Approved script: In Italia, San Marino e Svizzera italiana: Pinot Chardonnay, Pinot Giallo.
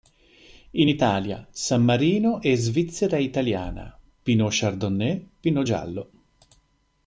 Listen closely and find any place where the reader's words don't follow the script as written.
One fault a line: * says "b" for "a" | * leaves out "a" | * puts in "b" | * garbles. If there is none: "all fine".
all fine